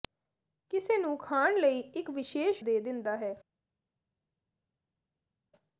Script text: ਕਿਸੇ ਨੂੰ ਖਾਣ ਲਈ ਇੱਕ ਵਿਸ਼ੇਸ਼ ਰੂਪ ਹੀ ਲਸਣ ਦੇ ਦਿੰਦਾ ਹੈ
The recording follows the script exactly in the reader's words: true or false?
false